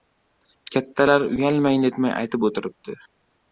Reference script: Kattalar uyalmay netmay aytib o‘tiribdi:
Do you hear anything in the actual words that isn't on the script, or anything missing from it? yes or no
no